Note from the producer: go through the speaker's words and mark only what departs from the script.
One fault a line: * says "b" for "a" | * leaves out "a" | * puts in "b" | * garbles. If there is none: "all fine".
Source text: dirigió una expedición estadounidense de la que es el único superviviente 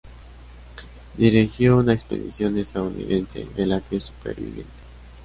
* leaves out "es el único"